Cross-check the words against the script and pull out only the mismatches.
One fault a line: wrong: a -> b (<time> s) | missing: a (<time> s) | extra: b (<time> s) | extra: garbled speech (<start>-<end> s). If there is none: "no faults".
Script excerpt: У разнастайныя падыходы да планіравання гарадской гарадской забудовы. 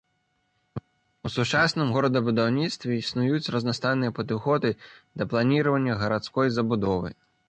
extra: сучасным горадабудаўніцтве існуюць (1.3 s)
missing: гарадской (6.5 s)